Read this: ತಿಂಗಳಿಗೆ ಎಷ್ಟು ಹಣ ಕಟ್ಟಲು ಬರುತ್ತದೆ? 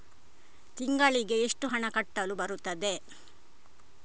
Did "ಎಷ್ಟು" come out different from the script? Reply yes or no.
no